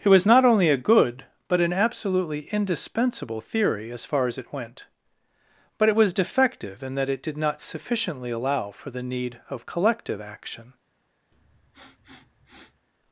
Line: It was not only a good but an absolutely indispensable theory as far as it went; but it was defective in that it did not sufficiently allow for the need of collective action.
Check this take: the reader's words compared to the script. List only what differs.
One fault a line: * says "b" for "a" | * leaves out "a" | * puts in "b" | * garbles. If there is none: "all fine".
all fine